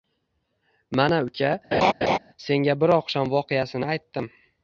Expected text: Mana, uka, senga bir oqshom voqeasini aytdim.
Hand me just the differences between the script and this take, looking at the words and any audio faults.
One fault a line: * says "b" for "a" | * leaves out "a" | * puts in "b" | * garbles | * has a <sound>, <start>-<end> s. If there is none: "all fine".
* has a laugh, 1.7-2.2 s